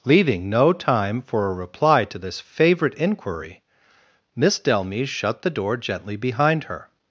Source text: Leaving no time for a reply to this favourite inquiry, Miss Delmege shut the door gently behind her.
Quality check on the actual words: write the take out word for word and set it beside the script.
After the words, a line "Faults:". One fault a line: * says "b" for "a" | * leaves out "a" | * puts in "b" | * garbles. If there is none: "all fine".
Leaving no time for a reply to this favourite inquiry, Miss Delmege shut the door gently behind her.
Faults:
all fine